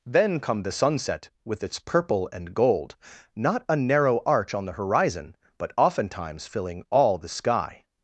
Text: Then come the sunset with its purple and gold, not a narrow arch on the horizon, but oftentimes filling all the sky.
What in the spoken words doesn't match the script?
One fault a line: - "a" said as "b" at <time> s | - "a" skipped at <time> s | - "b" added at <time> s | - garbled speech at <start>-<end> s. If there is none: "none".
none